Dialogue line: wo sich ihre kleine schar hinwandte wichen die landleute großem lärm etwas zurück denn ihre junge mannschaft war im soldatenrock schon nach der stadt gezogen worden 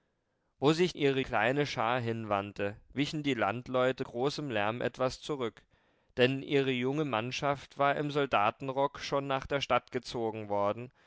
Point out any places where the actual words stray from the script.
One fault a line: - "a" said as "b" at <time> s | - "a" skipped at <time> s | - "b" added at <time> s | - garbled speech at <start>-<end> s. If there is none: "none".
none